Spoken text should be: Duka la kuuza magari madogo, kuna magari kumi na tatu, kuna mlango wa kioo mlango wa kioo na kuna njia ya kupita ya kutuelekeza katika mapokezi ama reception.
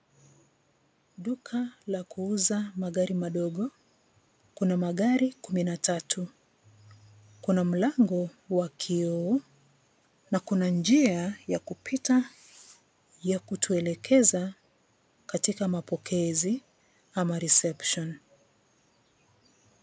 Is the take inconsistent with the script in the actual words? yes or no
yes